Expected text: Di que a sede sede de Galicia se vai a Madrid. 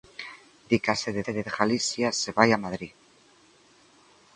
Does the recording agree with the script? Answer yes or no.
yes